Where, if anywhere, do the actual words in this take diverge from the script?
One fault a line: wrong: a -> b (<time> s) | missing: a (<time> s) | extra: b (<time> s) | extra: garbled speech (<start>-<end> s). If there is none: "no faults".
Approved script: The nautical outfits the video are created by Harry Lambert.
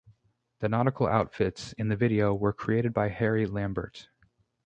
extra: in (1.7 s)
wrong: are -> were (2.3 s)